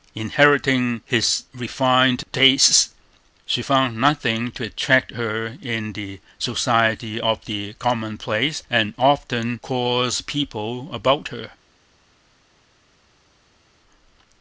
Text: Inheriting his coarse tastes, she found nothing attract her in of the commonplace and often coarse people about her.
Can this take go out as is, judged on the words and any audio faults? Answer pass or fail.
fail